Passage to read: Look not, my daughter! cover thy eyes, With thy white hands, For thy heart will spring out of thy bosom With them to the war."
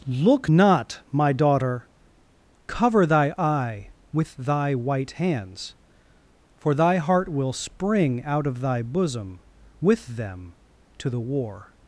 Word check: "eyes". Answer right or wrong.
wrong